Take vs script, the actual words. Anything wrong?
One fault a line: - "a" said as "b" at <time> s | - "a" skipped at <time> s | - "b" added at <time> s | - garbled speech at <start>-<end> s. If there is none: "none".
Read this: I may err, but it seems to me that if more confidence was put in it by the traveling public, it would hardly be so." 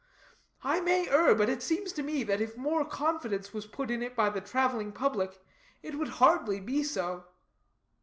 none